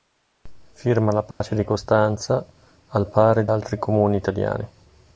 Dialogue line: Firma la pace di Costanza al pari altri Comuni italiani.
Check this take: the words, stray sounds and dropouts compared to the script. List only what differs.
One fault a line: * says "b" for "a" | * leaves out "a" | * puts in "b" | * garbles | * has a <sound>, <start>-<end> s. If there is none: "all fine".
* has a dropout, 1.3-1.4 s